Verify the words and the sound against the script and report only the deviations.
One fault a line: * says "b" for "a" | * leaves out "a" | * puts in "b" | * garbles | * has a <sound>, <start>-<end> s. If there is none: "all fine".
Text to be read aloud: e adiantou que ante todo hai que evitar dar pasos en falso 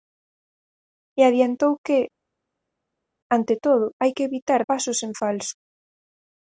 * leaves out "dar"